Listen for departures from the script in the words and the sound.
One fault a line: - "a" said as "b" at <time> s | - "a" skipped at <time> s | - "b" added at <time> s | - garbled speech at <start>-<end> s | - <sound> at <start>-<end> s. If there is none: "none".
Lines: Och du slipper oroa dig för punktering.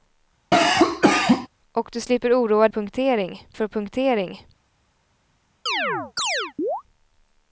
- cough at 0.5-1.5 s
- "dig" said as "punktering" at 2.7 s
- chirp at 5.7-6.8 s